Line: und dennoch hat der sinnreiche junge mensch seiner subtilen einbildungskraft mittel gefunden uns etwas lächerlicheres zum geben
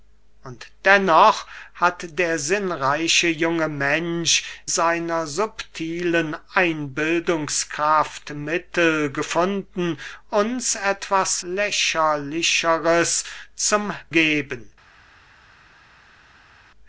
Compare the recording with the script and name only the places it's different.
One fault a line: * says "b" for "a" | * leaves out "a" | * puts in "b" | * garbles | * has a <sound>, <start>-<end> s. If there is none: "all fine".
all fine